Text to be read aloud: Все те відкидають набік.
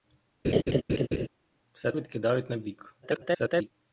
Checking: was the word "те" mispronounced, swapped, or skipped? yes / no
yes